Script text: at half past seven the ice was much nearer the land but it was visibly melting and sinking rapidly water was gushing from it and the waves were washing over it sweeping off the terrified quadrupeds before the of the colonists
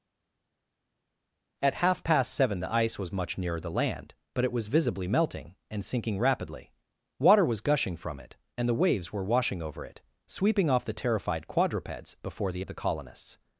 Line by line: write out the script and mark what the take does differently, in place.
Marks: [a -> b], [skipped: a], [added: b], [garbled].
at half past seven the ice was much nearer the land but it was visibly melting and sinking rapidly water was gushing from it and the waves were washing over it sweeping off the terrified quadrupeds before the of the colonists